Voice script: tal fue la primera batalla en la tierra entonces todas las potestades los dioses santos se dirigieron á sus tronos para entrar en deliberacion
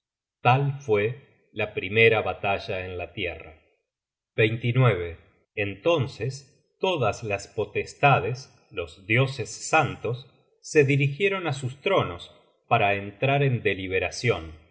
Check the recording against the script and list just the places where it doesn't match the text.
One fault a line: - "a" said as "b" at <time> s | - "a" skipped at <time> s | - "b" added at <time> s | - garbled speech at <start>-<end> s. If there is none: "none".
none